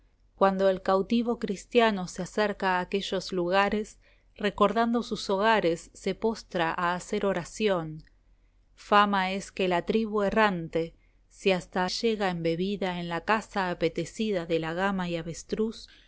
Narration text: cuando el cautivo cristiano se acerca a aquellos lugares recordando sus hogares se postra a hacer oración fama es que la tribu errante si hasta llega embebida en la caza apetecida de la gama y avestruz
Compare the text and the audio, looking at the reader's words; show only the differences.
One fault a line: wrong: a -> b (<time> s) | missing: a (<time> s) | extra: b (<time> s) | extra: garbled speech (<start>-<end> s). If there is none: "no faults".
no faults